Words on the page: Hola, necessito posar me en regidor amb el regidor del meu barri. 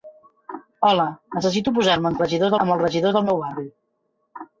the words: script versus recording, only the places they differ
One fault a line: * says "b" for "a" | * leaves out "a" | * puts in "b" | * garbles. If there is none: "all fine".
all fine